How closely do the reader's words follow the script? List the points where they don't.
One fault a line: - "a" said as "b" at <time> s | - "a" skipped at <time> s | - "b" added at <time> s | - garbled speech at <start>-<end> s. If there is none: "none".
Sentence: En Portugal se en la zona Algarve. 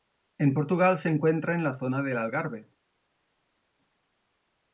- "encuentra" added at 1.1 s
- "del" added at 2.0 s